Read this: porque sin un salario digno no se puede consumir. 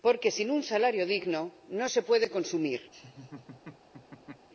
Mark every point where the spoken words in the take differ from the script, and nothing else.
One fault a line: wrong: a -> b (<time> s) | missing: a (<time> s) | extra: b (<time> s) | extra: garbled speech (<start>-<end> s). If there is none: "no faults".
no faults